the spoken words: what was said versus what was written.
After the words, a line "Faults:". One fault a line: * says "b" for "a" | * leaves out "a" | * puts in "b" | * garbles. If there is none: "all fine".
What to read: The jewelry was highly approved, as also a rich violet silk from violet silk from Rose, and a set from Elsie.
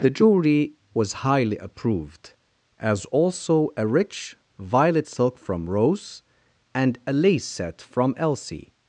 The jewelry was highly approved, as also a rich violet silk from Rose, and a lace set from Elsie.
Faults:
* leaves out "violet silk from"
* puts in "lace"